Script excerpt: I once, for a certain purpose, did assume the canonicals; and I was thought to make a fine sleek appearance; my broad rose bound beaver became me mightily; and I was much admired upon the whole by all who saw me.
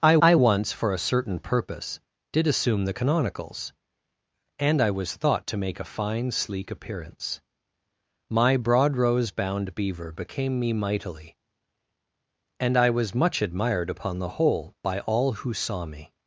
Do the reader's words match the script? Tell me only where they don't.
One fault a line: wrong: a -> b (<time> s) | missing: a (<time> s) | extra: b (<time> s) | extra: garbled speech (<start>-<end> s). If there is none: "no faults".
extra: I (0.2 s)